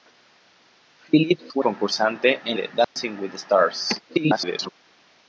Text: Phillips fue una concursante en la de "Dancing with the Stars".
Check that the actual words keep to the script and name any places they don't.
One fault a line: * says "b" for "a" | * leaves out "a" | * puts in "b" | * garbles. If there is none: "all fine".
* leaves out "una"
* leaves out "la"
* garbles